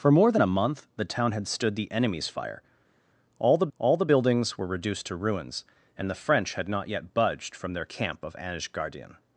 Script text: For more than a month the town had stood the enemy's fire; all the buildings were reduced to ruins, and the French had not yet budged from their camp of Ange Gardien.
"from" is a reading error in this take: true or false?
false